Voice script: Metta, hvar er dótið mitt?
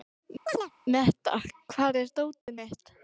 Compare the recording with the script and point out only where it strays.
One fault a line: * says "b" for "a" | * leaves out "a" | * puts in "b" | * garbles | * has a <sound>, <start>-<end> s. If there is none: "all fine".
* has a chirp, 0.5-0.7 s
* has a dropout, 2.4-2.5 s